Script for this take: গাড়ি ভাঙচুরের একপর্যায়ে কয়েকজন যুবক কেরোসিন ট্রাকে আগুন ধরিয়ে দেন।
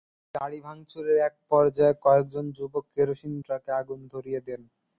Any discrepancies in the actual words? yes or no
no